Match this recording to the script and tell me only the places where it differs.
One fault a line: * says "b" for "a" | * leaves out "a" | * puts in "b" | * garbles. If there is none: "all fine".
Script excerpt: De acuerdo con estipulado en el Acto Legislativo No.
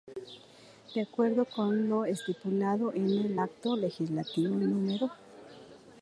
* puts in "lo"